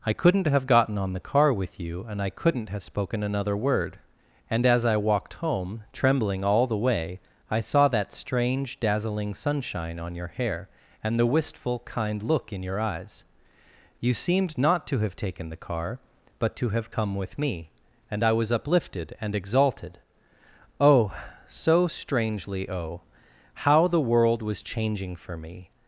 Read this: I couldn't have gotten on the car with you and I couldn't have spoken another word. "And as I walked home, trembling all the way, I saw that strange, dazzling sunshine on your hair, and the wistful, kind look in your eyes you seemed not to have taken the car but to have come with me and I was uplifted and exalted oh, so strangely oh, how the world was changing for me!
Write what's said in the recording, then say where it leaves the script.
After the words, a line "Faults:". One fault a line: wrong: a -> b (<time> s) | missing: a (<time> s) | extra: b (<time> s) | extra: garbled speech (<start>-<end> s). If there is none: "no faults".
I couldn't have gotten on the car with you and I couldn't have spoken another word. "And as I walked home, trembling all the way, I saw that strange, dazzling sunshine on your hair, and the wistful, kind look in your eyes you seemed not to have taken the car but to have come with me and I was uplifted and exalted oh, so strangely oh, how the world was changing for me!
Faults:
no faults